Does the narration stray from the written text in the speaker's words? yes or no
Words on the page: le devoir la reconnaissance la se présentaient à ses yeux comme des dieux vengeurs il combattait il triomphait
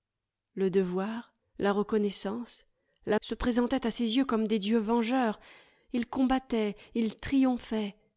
no